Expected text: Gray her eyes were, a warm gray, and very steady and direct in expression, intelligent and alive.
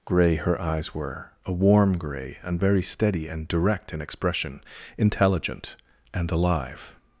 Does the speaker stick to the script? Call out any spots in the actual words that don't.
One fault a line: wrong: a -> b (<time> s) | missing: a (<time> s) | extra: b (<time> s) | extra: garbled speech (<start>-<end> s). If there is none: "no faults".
no faults